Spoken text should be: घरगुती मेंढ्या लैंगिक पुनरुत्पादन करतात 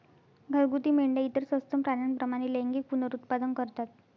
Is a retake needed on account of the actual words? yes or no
yes